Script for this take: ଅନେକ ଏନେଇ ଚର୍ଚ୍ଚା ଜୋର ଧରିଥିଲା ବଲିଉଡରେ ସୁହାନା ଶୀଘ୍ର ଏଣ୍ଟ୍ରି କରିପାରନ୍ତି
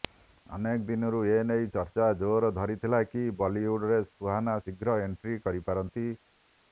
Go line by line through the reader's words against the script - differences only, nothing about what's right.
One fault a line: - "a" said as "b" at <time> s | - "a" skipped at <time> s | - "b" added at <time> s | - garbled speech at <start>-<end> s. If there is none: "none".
- "ଦିନରୁ" added at 0.9 s
- "କି" added at 3.1 s